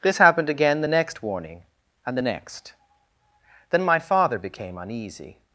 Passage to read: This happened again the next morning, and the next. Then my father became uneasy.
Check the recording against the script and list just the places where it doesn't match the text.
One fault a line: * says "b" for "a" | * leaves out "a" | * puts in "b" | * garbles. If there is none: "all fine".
* says "warning" for "morning"